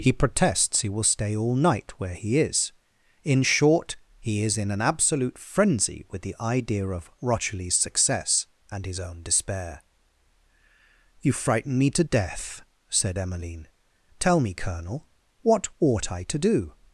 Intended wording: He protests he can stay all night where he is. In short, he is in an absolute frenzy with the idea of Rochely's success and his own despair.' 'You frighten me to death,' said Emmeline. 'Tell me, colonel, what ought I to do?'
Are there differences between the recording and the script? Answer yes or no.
yes